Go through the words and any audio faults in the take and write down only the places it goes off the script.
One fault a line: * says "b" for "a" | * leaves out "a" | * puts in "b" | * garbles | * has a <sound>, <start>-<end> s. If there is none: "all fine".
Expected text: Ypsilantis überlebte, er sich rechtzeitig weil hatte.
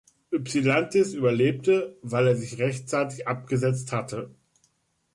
* puts in "weil"
* says "abgesetzt" for "weil"